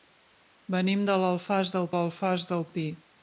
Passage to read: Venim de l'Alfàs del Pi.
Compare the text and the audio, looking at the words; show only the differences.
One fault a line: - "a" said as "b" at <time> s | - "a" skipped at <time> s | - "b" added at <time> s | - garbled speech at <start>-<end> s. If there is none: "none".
- "l'Alfàs del" added at 1.9 s